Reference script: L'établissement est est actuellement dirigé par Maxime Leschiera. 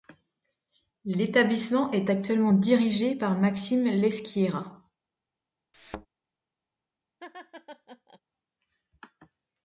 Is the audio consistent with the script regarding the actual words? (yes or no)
no